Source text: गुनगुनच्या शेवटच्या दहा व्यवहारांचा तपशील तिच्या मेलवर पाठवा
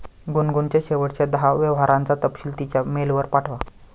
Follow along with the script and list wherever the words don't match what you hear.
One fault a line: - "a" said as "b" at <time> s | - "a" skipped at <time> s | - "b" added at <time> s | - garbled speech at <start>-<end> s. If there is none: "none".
none